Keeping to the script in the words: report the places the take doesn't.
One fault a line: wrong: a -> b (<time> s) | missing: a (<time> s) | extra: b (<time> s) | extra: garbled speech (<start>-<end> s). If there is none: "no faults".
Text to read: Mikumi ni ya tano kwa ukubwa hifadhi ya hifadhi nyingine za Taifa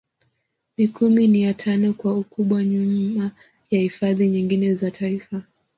wrong: hifadhi -> nyuma (2.6 s)